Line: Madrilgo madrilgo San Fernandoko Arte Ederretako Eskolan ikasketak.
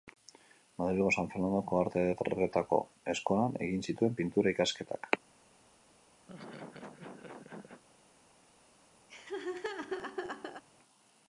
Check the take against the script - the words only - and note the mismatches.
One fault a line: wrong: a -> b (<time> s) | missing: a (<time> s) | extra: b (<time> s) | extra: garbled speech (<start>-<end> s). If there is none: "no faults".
missing: madrilgo (1.1 s)
extra: egin zituen Pintura (3.7 s)